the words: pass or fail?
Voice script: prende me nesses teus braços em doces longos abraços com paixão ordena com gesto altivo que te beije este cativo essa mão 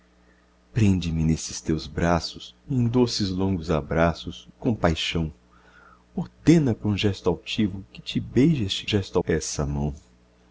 fail